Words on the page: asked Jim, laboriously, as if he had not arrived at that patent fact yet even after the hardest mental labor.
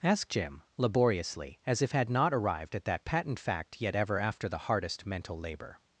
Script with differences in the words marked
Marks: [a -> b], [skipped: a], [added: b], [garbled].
asked Jim, laboriously, as if [skipped: he] had not arrived at that patent fact yet [even -> ever] after the hardest mental labor.